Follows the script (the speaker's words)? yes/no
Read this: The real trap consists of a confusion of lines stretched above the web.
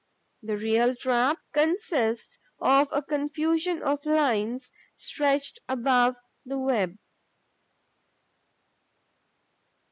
yes